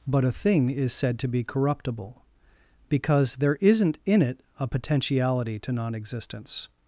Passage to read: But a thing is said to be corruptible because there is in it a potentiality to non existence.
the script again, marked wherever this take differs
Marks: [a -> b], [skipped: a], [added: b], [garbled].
But a thing is said to be corruptible because there [is -> isn't] in it a potentiality to non existence.